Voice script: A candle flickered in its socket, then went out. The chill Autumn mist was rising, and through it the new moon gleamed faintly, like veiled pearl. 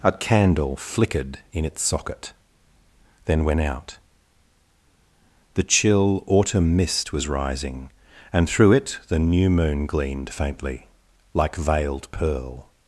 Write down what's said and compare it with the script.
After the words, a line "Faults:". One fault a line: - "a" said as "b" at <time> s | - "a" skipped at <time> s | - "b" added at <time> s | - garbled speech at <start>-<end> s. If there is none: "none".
A candle flickered in its socket, then went out. The chill Autumn mist was rising, and through it the new moon gleamed faintly, like veiled pearl.
Faults:
none